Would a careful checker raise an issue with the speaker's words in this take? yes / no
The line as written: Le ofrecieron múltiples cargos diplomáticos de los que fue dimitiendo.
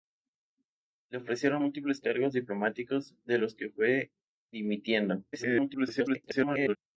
yes